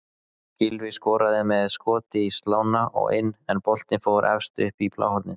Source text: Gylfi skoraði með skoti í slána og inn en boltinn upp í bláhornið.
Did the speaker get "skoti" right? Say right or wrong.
right